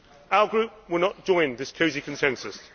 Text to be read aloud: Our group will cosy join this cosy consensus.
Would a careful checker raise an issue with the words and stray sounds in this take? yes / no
yes